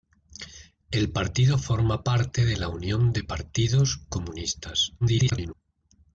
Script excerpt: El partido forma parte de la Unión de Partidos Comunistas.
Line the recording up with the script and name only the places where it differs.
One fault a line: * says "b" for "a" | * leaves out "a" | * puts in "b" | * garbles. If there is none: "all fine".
* garbles